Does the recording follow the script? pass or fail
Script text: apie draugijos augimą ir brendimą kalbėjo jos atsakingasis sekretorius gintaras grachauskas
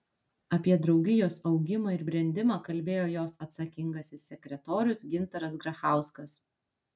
pass